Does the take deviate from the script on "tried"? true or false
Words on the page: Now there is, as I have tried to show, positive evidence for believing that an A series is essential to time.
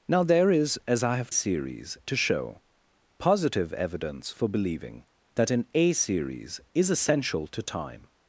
true